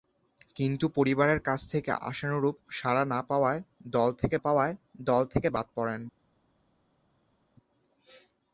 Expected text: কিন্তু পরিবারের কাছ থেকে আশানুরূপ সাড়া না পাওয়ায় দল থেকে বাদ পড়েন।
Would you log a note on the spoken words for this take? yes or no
yes